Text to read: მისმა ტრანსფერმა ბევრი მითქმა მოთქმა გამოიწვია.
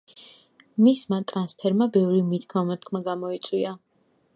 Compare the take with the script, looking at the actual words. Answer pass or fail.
pass